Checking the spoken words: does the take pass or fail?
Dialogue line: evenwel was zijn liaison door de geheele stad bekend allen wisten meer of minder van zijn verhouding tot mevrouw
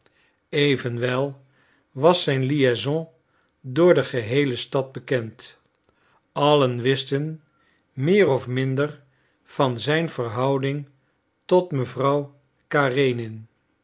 pass